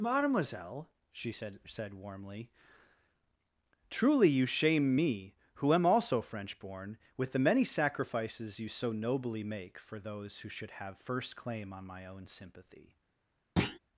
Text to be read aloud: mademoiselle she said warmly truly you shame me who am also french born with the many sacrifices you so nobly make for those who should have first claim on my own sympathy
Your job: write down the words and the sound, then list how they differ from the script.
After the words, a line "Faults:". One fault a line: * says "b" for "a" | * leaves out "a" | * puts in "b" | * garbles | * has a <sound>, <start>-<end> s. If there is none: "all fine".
mademoiselle she said said warmly truly you shame me who am also french born with the many sacrifices you so nobly make for those who should have first claim on my own sympathy
Faults:
* puts in "said"
* has a thud, 13.6-13.8 s